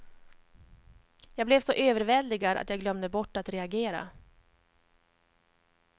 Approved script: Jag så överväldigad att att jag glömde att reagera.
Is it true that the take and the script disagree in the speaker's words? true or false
true